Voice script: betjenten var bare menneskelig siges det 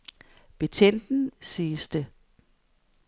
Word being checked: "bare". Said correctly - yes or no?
no